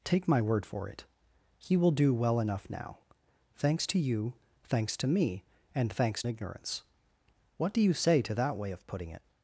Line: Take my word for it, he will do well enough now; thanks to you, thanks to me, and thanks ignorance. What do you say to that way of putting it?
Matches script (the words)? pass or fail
pass